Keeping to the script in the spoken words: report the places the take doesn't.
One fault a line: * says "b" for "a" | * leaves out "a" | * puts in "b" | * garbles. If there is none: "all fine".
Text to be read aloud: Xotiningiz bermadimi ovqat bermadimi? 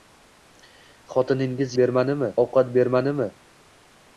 all fine